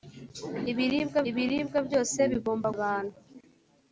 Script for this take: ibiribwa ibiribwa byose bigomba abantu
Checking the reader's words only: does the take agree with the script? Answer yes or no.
yes